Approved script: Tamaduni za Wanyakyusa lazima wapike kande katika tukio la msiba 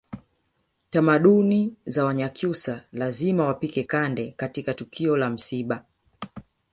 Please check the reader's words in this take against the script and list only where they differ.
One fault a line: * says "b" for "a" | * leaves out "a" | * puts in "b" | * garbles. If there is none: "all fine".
all fine